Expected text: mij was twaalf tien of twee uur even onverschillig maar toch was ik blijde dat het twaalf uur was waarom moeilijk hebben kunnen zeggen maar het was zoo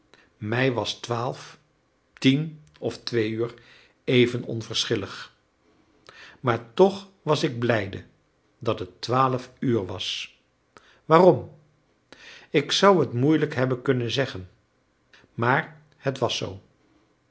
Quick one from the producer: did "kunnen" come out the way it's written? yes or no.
yes